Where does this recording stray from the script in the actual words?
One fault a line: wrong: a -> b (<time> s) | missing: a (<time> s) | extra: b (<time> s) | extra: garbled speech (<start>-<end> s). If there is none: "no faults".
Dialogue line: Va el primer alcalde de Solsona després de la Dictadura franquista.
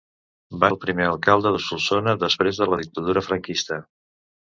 no faults